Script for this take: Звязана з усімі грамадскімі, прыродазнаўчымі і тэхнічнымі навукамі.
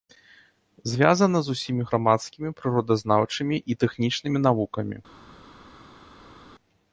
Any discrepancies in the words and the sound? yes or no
no